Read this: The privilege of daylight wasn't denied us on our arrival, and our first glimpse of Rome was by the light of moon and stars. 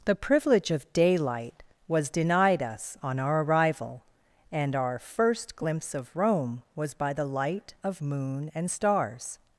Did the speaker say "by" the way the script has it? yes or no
yes